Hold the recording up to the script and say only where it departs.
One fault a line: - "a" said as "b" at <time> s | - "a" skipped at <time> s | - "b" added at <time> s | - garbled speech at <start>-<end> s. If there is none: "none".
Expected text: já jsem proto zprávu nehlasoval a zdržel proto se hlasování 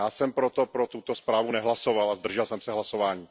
- "pro tuto" added at 0.7 s
- "proto" said as "jsem" at 2.5 s